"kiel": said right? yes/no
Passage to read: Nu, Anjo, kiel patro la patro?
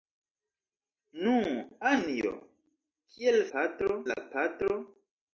yes